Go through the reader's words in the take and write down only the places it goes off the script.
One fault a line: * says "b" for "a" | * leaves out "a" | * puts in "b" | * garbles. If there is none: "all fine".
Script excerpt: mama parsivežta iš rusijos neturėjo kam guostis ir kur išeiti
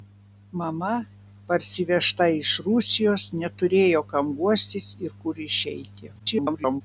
* garbles